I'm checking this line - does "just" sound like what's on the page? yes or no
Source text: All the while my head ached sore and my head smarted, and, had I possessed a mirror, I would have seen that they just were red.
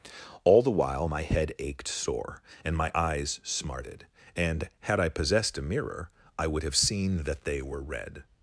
no